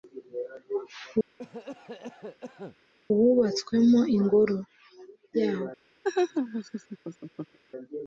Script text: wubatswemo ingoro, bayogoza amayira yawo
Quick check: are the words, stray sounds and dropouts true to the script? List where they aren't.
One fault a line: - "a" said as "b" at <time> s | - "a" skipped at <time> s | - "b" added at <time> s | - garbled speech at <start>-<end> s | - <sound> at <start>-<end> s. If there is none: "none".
- cough at 1.4-2.8 s
- "bayogoza amayira" skipped at 4.6 s
- laugh at 6.0-7.6 s